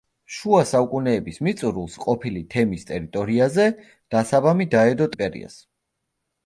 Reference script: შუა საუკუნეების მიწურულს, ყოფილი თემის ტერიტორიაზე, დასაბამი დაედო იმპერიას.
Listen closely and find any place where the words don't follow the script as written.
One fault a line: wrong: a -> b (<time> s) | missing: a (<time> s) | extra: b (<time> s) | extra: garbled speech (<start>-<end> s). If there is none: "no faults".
no faults